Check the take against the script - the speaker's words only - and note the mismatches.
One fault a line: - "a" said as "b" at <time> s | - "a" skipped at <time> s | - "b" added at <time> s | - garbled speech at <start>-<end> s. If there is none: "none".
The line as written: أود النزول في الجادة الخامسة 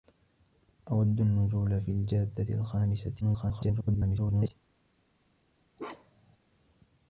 - garbled speech at 3.2-4.5 s